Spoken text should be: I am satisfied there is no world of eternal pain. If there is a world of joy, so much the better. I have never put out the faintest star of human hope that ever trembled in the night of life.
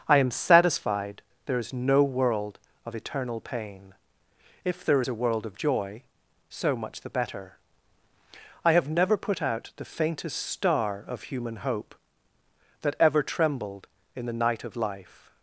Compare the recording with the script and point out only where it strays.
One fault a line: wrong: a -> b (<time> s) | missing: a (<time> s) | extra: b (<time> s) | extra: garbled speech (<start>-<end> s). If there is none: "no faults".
no faults